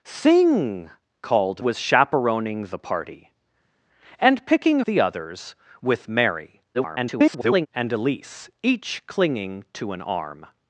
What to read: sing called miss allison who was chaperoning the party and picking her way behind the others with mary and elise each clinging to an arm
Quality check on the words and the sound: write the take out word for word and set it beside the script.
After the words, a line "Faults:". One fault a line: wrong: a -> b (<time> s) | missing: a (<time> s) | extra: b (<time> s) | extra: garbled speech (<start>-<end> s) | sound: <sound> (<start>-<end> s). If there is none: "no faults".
sing called was chaperoning the party and picking the others with mary [garbled] and elise each clinging to an arm
Faults:
missing: miss allison who (1.6 s)
missing: her way behind (4.8 s)
extra: garbled speech (6.7-7.7 s)